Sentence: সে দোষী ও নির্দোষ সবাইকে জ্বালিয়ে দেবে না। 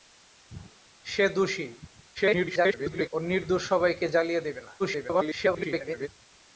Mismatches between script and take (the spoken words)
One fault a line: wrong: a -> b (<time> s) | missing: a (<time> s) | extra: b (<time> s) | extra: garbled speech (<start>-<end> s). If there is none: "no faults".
extra: garbled speech (2.2-3.1 s)
extra: garbled speech (4.8-6.1 s)